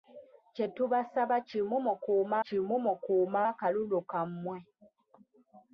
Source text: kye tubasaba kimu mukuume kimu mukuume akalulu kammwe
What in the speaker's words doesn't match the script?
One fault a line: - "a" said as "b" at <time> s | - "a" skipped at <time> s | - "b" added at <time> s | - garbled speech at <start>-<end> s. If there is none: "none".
none